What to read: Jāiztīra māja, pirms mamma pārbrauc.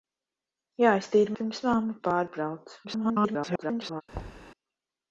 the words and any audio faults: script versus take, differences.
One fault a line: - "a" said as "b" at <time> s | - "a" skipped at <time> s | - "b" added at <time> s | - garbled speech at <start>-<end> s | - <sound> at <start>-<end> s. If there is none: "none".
- "māja" skipped at 1.4 s
- garbled speech at 2.8-4.0 s
- thud at 4.1-4.5 s